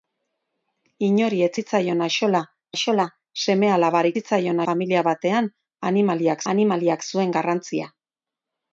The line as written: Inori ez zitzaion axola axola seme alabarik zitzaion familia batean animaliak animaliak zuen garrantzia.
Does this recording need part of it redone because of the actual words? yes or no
no